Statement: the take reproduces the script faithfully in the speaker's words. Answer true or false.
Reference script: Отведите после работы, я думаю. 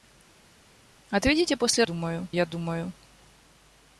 false